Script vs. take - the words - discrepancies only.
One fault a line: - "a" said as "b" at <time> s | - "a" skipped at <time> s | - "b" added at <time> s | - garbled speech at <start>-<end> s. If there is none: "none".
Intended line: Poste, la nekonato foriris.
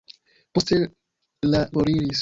- "nekonato" skipped at 1.6 s